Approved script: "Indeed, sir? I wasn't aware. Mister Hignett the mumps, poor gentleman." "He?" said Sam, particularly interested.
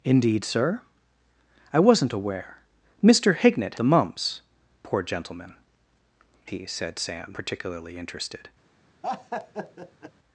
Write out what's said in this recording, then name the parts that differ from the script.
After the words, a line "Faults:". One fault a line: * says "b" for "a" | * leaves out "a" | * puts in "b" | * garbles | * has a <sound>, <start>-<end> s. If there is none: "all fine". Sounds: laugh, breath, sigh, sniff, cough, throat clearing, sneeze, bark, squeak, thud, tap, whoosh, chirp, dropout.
"Indeed, sir? I wasn't aware. Mister Hignett the mumps, poor gentleman." "He?" said Sam, particularly interested.
Faults:
* has a laugh, 9.0-10.1 s